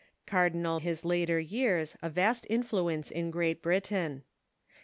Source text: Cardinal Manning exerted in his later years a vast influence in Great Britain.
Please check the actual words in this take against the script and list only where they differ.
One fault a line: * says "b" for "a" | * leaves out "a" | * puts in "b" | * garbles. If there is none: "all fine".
* leaves out "Manning exerted in"